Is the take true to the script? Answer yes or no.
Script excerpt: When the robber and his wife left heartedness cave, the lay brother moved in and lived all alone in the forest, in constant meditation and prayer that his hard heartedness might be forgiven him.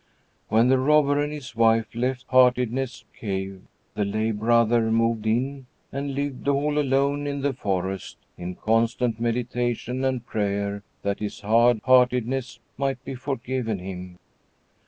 yes